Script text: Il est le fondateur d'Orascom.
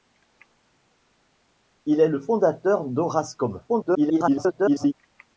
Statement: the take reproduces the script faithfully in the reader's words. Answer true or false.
false